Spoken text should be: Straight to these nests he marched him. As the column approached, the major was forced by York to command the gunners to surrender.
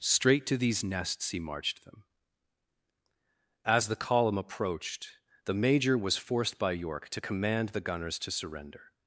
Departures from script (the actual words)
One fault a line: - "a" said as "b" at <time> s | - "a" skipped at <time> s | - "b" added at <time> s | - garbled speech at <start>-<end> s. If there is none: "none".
- "him" said as "them" at 1.9 s